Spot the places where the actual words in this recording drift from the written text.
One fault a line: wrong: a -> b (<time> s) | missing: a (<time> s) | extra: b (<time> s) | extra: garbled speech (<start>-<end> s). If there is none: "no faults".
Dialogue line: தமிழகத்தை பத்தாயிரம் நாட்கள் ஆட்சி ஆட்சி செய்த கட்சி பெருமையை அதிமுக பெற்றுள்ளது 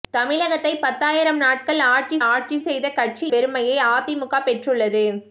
no faults